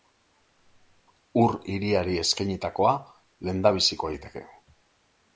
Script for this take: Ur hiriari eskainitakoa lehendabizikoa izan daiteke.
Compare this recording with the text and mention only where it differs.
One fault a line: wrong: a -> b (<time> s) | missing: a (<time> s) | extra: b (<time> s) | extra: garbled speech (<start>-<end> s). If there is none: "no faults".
missing: izan (4.1 s)